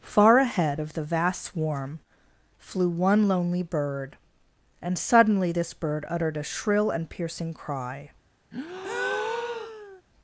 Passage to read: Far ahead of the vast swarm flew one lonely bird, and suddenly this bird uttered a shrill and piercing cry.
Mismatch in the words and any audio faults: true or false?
true